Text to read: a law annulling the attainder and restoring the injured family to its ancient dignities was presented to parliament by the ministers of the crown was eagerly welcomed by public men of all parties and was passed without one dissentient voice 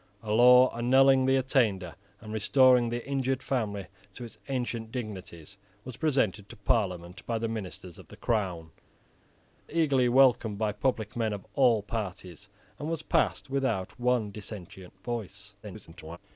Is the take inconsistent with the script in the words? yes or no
yes